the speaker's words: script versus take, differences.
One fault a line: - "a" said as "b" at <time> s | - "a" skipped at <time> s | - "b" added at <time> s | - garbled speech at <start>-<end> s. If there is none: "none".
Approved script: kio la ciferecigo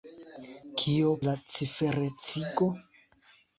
none